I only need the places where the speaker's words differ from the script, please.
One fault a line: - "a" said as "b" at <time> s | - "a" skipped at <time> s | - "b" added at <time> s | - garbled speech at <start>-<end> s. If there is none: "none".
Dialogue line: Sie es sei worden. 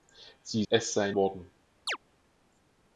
none